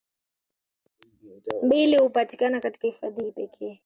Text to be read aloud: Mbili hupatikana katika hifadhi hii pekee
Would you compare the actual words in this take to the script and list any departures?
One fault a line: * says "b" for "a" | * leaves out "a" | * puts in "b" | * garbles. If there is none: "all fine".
all fine